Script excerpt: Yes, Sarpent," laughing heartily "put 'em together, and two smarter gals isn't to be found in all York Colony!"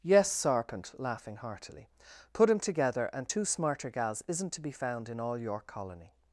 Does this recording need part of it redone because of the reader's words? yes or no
no